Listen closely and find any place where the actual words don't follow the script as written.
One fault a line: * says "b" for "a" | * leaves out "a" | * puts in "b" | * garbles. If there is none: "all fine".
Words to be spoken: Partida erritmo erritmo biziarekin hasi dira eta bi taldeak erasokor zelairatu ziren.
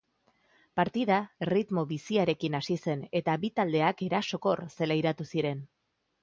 * leaves out "erritmo"
* says "zen" for "dira"